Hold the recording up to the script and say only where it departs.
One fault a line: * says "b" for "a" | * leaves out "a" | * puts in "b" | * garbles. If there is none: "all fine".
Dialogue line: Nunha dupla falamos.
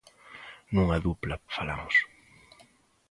all fine